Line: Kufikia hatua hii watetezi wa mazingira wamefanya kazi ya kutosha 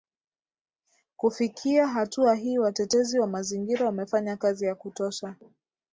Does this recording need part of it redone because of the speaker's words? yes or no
no